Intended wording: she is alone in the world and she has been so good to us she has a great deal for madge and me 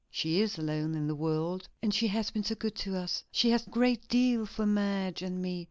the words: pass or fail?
pass